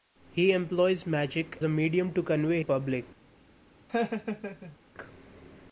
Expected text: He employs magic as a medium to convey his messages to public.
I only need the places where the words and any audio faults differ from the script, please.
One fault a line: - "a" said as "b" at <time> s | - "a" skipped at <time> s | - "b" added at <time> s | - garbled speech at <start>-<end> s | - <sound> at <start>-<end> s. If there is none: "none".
- "as" skipped at 1.6 s
- "his messages to" skipped at 2.6 s
- laugh at 3.9-4.8 s